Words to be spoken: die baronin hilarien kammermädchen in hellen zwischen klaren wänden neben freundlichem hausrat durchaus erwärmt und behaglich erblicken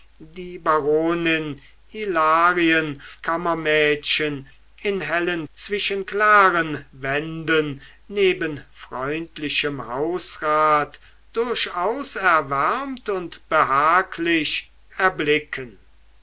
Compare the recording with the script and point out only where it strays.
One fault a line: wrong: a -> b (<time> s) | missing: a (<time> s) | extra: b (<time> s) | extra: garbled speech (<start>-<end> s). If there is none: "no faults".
no faults